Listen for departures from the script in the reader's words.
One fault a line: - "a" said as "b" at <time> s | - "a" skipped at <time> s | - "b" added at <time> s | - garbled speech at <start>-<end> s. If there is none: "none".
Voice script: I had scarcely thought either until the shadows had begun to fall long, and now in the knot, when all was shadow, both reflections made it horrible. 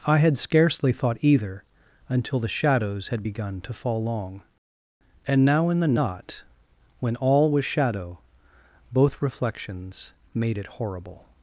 none